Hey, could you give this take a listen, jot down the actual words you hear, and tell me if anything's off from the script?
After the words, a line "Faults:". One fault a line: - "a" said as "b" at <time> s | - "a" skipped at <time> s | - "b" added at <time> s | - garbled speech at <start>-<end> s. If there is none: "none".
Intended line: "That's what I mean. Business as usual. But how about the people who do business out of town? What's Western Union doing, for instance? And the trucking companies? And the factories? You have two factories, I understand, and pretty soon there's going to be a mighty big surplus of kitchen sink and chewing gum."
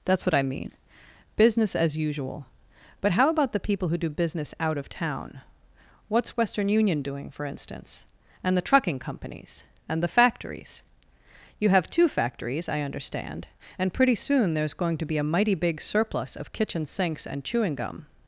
"That's what I mean. Business as usual. But how about the people who do business out of town? What's Western Union doing, for instance? And the trucking companies? And the factories? You have two factories, I understand, and pretty soon there's going to be a mighty big surplus of kitchen sinks and chewing gum."
Faults:
- "sink" said as "sinks" at 16.8 s